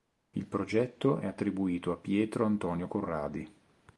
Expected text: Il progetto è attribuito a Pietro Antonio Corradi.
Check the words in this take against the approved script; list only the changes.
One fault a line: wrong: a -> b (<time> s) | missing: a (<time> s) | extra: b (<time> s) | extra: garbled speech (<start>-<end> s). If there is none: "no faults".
no faults